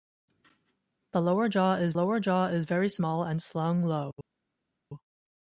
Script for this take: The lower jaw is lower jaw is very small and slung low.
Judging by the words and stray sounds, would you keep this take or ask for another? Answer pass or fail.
pass